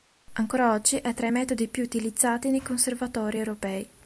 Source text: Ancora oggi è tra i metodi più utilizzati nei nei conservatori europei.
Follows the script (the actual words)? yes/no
no